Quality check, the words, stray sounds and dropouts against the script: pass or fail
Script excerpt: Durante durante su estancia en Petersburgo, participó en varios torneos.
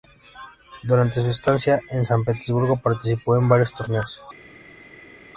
fail